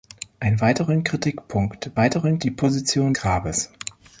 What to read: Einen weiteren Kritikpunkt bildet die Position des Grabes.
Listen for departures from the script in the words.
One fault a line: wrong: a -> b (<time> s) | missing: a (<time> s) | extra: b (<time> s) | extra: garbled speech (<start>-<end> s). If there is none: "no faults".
wrong: bildet -> weiteren (2.0 s)
missing: des (3.1 s)